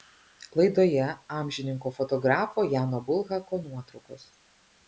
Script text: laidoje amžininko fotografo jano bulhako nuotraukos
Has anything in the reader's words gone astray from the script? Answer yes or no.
no